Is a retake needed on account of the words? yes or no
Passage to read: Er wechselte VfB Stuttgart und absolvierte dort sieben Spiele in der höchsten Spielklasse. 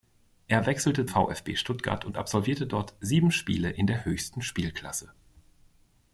no